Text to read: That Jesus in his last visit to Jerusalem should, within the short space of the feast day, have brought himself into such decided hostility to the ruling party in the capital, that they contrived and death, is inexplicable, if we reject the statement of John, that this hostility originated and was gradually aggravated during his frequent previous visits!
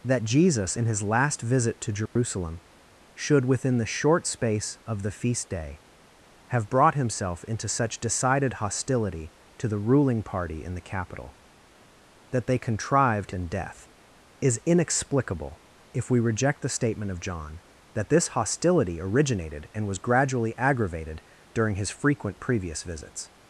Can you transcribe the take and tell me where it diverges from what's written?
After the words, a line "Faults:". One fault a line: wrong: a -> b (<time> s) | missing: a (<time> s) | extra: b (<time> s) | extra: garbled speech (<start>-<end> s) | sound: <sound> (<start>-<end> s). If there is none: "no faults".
That Jesus in his last visit to Jerusalem should, within the short space of the feast day, have brought himself into such decided hostility to the ruling party in the capital, that they contrived and death, is inexplicable, if we reject the statement of John, that this hostility originated and was gradually aggravated during his frequent previous visits!
Faults:
sound: dropout (2.1-2.2 s)